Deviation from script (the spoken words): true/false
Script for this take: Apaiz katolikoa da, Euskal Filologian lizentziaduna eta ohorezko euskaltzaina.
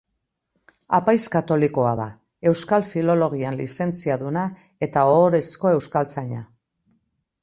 false